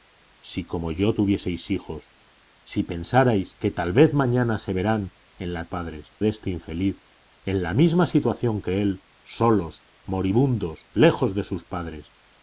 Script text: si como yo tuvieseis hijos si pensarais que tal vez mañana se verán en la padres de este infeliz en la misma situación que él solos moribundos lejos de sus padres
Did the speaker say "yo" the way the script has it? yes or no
yes